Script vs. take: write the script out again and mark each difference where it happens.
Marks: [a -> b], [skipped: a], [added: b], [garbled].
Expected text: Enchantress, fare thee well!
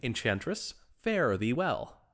Enchantress, fare thee well!